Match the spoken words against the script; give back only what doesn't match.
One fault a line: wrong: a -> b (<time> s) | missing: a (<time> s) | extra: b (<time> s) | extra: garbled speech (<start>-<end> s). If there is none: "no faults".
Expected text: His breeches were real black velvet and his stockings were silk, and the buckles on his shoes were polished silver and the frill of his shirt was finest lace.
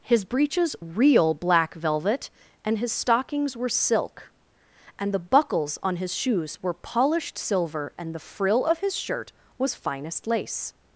missing: were (0.8 s)